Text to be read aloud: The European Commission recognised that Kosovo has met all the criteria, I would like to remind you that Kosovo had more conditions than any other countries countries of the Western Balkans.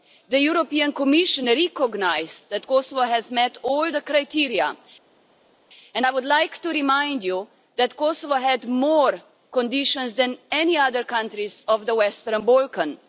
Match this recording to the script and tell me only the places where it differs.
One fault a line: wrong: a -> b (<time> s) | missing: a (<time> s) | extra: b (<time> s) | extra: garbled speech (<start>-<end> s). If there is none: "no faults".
extra: and (5.9 s)
missing: countries (11.6 s)